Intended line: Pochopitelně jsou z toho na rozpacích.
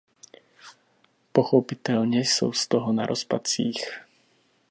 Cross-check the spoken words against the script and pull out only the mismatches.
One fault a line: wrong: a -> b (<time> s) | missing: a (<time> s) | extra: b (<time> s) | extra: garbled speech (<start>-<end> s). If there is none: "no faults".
no faults